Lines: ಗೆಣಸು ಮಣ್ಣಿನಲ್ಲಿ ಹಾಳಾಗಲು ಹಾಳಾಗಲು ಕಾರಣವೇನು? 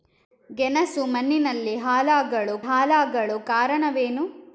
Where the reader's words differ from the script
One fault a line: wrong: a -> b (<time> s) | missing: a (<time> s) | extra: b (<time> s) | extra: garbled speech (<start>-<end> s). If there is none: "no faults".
no faults